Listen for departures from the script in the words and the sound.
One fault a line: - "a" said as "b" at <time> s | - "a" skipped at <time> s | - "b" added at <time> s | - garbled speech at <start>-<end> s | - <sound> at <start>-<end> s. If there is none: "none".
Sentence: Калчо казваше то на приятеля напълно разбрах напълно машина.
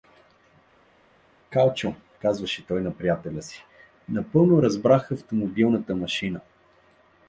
- "то" said as "той" at 2.7 s
- "си" added at 3.4 s
- "напълно" said as "автомобилната" at 5.1 s